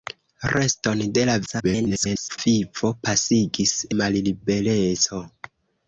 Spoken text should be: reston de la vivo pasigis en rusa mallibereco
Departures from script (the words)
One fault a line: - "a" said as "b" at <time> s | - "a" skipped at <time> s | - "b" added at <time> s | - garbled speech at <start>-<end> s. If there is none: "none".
- garbled speech at 1.5-2.4 s
- "en rusa" skipped at 3.7 s